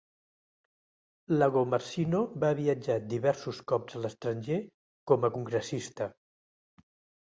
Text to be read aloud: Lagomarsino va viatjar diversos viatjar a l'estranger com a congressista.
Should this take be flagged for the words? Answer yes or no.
yes